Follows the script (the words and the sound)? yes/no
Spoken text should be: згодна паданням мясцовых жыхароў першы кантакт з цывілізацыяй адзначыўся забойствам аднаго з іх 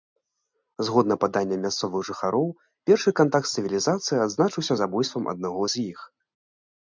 yes